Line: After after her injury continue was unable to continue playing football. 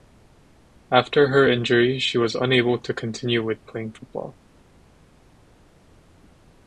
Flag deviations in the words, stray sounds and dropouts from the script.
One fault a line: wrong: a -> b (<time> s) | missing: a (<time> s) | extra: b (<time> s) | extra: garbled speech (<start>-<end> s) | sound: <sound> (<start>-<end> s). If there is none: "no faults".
missing: after (1.3 s)
wrong: continue -> she (2.0 s)
extra: with (3.4 s)